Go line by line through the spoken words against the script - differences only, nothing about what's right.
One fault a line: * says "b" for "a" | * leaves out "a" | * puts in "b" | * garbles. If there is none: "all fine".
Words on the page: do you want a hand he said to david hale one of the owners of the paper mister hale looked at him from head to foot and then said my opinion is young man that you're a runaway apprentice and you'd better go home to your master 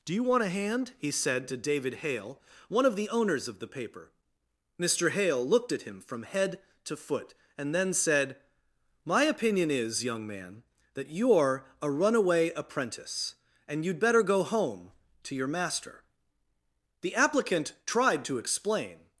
* puts in "the applicant tried to explain"